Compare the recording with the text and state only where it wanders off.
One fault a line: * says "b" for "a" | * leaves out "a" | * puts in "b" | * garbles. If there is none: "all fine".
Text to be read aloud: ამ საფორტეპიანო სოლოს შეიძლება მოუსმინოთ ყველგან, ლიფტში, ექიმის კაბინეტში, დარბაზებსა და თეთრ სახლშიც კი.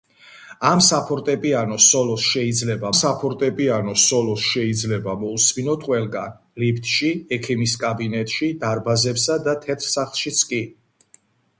* puts in "საფორტეპიანო სოლოს შეიძლება"